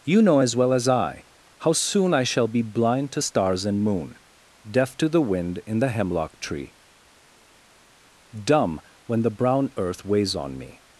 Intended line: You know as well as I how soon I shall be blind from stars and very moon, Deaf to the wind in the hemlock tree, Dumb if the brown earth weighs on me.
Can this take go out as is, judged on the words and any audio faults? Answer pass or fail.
fail